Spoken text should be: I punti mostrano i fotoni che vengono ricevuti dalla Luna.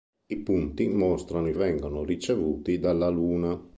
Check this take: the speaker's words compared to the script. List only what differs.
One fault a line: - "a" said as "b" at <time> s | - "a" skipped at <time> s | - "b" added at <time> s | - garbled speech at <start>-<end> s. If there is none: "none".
- "fotoni che" skipped at 1.5 s